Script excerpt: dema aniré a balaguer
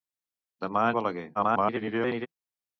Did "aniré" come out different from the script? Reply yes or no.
yes